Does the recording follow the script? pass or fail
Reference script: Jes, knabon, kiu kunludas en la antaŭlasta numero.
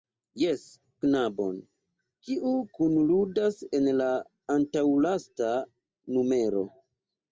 pass